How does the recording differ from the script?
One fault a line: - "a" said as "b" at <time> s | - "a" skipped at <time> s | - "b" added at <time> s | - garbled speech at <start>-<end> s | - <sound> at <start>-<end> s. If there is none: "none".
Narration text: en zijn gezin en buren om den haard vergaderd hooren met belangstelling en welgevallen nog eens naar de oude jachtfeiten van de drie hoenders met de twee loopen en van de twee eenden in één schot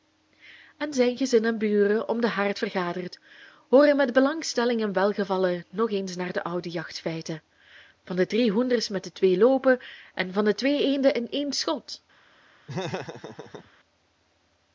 - laugh at 12.7-13.7 s